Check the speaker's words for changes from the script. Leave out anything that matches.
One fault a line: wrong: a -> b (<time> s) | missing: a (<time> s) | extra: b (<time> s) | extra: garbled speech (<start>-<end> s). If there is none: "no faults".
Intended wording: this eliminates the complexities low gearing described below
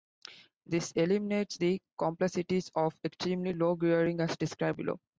extra: of extremely (2.7 s)
extra: as (4.2 s)